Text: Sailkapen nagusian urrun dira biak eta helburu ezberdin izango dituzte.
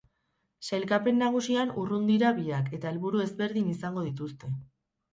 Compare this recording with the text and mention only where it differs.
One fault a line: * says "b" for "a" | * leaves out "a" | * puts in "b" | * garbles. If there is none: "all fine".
all fine